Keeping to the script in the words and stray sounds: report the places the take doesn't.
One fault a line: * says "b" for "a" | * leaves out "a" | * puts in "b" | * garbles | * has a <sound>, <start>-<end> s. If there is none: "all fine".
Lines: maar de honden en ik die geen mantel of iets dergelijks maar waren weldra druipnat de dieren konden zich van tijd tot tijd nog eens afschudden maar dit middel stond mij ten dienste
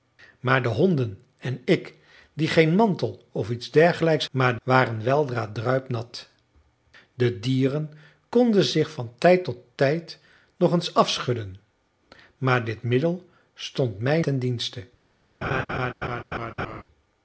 * has a laugh, 15.4-16.8 s